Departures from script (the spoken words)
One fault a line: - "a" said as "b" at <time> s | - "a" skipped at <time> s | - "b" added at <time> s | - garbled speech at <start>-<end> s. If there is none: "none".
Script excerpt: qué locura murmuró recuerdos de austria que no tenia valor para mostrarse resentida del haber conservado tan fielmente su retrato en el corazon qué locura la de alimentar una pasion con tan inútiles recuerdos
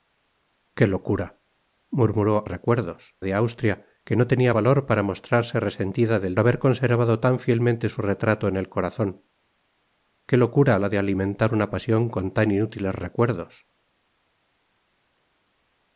none